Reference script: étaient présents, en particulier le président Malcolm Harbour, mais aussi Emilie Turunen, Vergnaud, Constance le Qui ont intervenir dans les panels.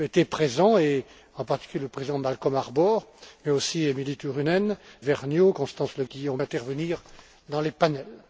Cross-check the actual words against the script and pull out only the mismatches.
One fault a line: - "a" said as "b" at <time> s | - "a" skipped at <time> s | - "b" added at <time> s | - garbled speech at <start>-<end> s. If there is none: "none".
none